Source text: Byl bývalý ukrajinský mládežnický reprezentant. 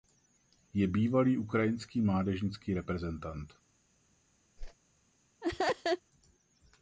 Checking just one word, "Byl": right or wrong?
wrong